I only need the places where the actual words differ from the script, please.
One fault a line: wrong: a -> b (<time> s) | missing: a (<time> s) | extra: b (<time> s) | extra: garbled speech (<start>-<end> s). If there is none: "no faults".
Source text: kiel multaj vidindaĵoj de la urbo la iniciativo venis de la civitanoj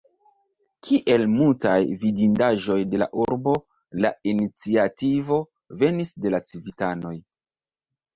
no faults